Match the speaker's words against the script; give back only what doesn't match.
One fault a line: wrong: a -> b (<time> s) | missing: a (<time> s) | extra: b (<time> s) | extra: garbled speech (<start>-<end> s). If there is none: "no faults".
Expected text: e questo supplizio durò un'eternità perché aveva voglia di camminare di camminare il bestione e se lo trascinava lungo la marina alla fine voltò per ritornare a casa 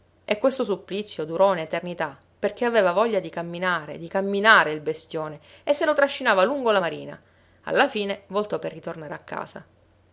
no faults